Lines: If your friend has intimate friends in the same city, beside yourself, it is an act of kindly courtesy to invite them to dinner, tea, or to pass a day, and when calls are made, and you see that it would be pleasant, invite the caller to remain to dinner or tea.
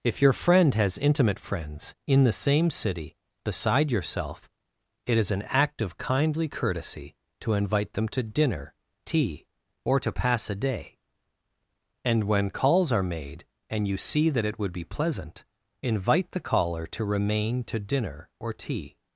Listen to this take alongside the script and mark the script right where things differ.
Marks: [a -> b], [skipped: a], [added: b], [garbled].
If your friend has intimate friends in the same city, beside yourself, it is an act of kindly courtesy to invite them to dinner, tea, or to pass a day, and when calls are made, and you see that it would be pleasant, invite the caller to remain to dinner or tea.